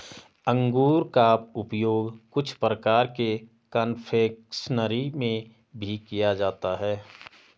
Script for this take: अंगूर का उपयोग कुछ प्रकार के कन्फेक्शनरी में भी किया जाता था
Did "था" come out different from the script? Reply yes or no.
yes